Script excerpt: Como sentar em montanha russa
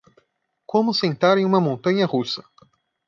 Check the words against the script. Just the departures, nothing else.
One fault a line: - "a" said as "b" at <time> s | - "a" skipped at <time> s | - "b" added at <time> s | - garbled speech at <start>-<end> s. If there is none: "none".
- "uma" added at 1.4 s